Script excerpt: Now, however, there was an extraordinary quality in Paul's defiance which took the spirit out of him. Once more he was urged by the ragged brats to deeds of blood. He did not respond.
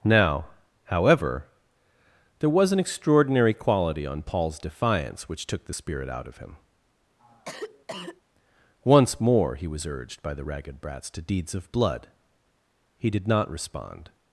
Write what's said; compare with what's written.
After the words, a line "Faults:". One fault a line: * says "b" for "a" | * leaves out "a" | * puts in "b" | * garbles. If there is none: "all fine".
Now, however, there was an extraordinary quality on Paul's defiance which took the spirit out of him. Once more he was urged by the ragged brats to deeds of blood. He did not respond.
Faults:
* says "on" for "in"